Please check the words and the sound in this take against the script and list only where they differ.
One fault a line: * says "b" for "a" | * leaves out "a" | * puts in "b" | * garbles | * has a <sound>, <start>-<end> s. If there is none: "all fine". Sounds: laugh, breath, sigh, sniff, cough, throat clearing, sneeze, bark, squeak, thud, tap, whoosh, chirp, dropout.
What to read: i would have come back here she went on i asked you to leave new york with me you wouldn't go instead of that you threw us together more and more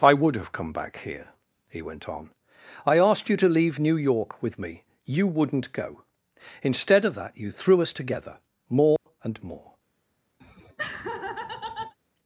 * says "he" for "she"
* has a dropout, 9.0-9.1 s
* has a laugh, 10.4-11.9 s